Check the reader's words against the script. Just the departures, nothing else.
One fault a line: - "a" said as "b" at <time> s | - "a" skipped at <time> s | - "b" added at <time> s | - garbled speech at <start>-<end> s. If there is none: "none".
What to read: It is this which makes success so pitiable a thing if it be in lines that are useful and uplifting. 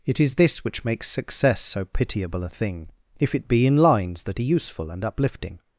none